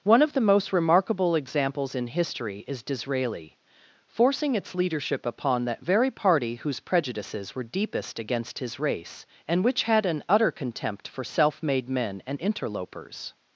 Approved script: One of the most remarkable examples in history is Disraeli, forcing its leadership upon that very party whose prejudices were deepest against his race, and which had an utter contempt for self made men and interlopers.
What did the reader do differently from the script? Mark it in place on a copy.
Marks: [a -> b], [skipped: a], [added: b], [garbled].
One of the most remarkable examples in history is Disraeli, forcing its leadership upon that very party whose prejudices were deepest against his race, and which had an utter contempt for self made men and interlopers.